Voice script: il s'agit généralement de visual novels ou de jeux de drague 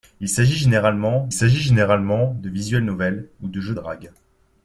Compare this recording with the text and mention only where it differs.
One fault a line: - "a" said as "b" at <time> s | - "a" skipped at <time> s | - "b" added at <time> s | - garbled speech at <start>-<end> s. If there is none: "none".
- "s'agit généralement" added at 1.3 s
- "de" skipped at 3.7 s